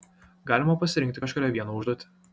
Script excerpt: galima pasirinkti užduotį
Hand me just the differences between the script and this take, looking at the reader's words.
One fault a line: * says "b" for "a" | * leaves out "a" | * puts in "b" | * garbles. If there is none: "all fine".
* puts in "kažkurią vieną"